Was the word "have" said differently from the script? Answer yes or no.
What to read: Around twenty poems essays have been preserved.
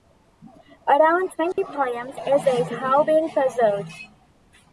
no